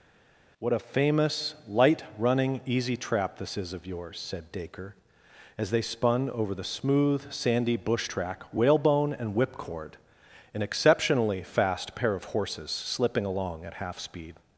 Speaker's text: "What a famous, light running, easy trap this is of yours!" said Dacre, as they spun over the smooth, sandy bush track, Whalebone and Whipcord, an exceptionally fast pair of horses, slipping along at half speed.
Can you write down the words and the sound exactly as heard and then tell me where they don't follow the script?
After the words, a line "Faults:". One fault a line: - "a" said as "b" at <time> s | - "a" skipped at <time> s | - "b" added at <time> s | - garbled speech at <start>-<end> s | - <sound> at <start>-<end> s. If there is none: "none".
"What a famous, light running, easy trap this is of yours!" said Dacre, as they spun over the smooth, sandy bush track, Whalebone and Whipcord, an exceptionally fast pair of horses, slipping along at half speed.
Faults:
none